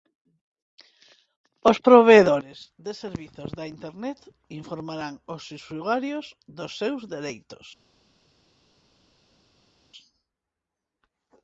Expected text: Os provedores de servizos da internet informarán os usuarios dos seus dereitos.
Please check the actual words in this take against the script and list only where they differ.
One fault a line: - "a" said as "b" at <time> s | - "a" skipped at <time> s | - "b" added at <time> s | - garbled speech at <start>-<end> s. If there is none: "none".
none